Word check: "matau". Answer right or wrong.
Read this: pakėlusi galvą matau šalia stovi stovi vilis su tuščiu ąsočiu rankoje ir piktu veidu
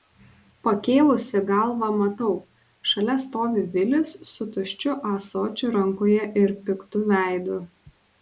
right